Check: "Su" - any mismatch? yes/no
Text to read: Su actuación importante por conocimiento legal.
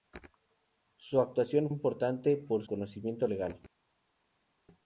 no